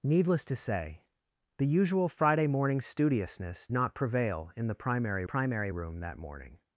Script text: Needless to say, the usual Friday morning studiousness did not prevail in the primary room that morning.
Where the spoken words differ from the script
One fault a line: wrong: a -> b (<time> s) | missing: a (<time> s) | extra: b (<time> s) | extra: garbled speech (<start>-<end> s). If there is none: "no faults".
missing: did (3.7 s)
extra: primary (5.2 s)